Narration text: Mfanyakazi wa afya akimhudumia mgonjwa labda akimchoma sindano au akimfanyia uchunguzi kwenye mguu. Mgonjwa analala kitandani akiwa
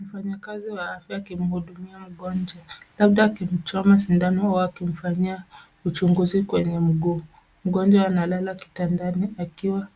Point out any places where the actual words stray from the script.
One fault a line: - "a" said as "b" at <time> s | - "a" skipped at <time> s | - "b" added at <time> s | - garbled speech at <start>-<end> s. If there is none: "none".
none